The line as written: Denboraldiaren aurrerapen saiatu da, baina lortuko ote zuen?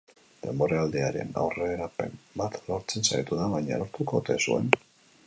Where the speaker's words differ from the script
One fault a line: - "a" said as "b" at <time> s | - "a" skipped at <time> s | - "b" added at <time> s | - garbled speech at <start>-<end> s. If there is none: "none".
- "bat lortzen" added at 2.4 s